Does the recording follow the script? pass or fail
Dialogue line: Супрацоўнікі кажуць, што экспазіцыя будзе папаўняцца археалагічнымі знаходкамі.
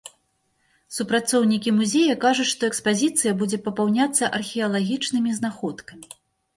fail